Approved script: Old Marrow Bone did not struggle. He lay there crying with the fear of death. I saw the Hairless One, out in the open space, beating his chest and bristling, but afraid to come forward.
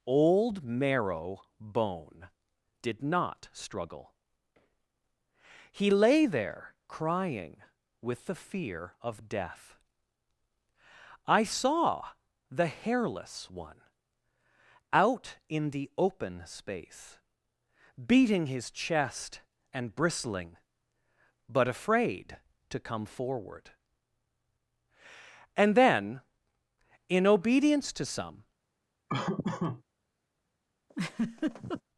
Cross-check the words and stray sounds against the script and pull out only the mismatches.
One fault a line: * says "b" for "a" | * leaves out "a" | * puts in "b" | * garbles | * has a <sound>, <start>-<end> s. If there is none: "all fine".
* puts in "And then in obedience to some"
* has a laugh, 29.1-29.8 s
* has a laugh, 30.9-31.8 s